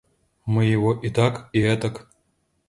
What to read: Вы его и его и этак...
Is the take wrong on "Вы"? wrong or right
wrong